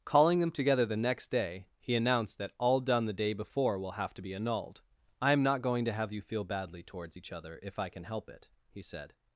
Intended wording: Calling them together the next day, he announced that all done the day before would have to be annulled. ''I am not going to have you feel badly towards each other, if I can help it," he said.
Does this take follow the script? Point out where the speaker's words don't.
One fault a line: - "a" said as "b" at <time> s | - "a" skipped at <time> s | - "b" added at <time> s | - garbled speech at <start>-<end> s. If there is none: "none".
- "would" said as "will" at 3.8 s